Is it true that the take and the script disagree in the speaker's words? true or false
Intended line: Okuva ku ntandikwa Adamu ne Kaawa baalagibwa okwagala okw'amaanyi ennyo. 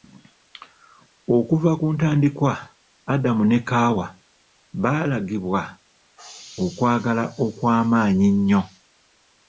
false